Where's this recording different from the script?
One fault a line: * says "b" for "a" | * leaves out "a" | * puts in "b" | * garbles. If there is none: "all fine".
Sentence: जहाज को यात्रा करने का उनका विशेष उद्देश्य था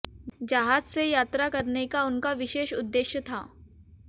* says "से" for "को"